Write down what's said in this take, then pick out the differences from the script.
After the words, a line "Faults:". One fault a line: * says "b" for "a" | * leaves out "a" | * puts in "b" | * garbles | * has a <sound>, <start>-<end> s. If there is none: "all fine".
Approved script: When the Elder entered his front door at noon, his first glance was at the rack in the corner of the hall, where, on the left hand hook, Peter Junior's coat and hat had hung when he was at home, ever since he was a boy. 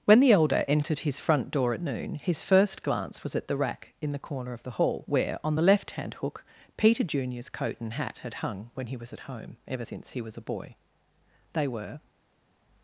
When the Elder entered his front door at noon, his first glance was at the rack in the corner of the hall, where, on the left hand hook, Peter Junior's coat and hat had hung when he was at home, ever since he was a boy. They were
Faults:
* puts in "They were"